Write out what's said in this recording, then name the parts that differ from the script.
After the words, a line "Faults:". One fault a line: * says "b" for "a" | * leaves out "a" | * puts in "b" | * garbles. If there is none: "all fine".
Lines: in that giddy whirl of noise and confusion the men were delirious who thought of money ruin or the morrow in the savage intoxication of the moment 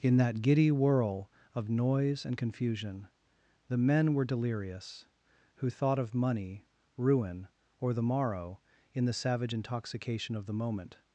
in that giddy whirl of noise and confusion the men were delirious who thought of money ruin or the morrow in the savage intoxication of the moment
Faults:
all fine